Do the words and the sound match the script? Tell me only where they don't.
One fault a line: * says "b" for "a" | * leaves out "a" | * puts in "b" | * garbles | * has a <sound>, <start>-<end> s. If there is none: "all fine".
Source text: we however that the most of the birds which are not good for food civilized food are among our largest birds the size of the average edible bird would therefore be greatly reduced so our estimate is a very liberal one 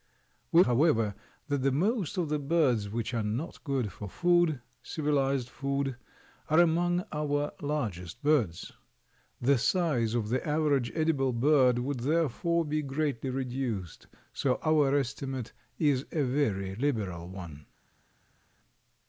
all fine